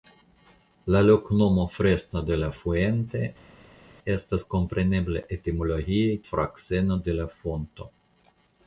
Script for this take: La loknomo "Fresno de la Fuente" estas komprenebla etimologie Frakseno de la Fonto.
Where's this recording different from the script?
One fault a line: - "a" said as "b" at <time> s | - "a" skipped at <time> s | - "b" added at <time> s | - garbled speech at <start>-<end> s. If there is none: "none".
none